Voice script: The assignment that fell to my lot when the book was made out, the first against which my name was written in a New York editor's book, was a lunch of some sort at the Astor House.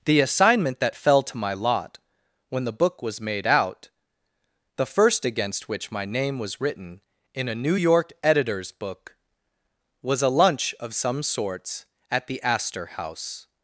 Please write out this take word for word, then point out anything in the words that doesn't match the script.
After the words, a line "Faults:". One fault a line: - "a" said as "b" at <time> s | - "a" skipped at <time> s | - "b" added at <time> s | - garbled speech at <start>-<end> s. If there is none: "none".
The assignment that fell to my lot when the book was made out, the first against which my name was written in a New York editor's book, was a lunch of some sorts at the Astor House.
Faults:
- "sort" said as "sorts" at 11.2 s